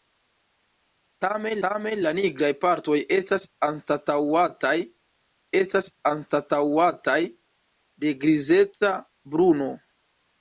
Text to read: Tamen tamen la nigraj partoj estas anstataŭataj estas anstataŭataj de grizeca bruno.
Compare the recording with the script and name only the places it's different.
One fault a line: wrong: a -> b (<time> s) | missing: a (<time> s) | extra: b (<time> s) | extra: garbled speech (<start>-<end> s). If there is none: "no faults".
no faults